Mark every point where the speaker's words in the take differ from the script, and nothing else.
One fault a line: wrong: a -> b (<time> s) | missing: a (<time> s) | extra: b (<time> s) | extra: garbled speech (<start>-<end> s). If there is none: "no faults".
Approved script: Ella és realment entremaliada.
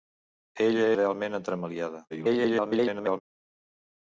missing: és (0.9 s)
extra: garbled speech (2.1-3.2 s)